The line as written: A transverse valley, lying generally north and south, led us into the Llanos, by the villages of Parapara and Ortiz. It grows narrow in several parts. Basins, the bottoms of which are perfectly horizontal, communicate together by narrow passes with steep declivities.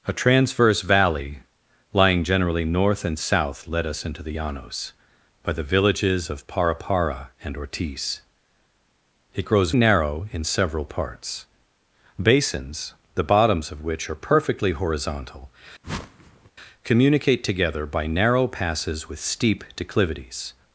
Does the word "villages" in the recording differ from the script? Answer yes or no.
no